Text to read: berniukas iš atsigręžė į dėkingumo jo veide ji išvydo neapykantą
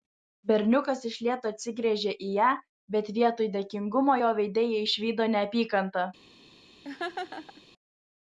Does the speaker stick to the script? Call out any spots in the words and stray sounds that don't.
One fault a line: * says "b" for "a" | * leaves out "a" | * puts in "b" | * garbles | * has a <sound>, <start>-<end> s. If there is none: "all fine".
* puts in "lėto"
* puts in "ją bet vietoj"
* has a laugh, 6.8-7.6 s